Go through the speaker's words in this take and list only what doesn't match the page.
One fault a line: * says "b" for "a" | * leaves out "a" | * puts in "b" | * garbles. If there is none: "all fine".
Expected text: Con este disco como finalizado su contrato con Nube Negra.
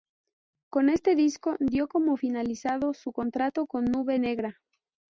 * puts in "dio"